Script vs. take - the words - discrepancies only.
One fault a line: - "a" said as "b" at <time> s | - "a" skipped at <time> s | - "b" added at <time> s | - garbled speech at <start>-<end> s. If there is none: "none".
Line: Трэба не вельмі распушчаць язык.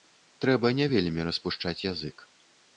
none